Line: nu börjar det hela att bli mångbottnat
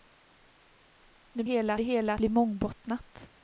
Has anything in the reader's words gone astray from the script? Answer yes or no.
yes